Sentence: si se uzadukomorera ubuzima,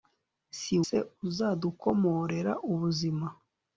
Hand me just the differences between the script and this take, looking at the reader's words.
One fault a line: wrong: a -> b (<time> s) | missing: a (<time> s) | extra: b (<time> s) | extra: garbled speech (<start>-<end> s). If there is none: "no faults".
no faults